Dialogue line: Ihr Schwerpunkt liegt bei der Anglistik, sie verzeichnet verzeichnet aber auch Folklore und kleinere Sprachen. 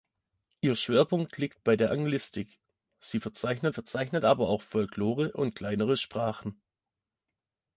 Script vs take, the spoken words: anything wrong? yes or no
no